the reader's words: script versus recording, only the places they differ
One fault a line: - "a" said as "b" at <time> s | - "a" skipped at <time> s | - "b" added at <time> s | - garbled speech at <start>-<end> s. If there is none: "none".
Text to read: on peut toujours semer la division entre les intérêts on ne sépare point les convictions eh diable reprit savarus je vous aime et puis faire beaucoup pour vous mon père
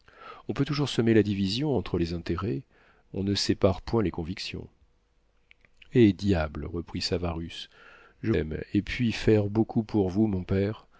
- "vous" skipped at 8.3 s